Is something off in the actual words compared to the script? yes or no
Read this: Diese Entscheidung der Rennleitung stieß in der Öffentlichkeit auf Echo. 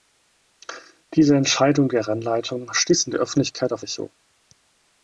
no